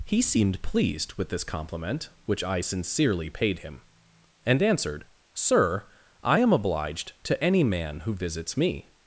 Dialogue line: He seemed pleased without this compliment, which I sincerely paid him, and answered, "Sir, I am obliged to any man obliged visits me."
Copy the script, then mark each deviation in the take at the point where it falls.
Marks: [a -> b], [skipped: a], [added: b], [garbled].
He seemed pleased [without -> with] this compliment, which I sincerely paid him, and answered, "Sir, I am obliged to any man [obliged -> who] visits me."